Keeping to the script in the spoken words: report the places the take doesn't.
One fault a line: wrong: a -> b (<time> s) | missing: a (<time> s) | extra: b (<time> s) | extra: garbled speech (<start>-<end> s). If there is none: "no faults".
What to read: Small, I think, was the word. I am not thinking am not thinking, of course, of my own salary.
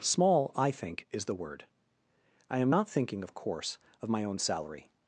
wrong: was -> is (1.1 s)
missing: am not thinking (3.2 s)